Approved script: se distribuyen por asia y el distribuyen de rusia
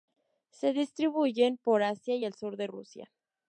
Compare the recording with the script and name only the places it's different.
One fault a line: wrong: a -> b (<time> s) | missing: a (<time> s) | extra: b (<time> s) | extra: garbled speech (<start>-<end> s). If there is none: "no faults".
wrong: distribuyen -> sur (2.3 s)